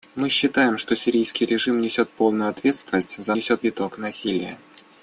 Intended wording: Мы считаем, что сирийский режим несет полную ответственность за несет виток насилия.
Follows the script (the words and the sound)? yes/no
yes